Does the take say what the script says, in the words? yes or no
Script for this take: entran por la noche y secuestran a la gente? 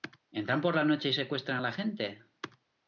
yes